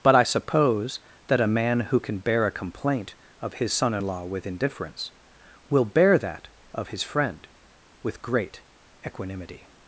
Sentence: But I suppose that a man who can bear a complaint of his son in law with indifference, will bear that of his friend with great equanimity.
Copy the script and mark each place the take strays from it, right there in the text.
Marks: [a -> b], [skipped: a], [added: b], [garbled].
But I suppose that a man who can bear a complaint of his son in law with indifference, will bear that of his friend with great equanimity.